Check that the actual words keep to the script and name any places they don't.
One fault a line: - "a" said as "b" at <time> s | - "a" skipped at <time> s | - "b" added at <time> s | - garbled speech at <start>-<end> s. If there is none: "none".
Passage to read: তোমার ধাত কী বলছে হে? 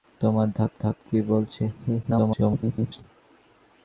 - "ধাত" added at 0.8 s
- garbled speech at 2.0-3.0 s